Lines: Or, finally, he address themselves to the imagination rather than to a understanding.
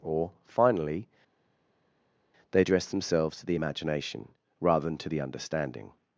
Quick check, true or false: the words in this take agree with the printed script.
false